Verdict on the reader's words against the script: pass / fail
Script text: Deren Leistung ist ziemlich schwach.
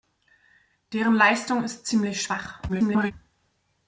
fail